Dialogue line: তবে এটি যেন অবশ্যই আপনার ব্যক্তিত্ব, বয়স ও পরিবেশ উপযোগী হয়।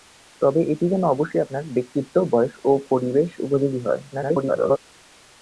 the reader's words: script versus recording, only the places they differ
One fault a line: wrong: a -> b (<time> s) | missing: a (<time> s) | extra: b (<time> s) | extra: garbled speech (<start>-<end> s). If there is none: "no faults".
extra: garbled speech (4.1-4.8 s)